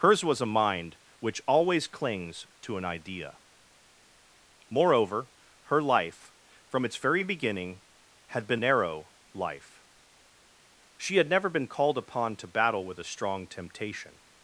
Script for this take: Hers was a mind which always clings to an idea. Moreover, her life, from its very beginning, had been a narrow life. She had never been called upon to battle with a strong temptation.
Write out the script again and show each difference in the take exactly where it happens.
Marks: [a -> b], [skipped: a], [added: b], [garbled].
Hers was a mind which always clings to an idea. Moreover, her life, from its very beginning, had been [skipped: a] narrow life. She had never been called upon to battle with a strong temptation.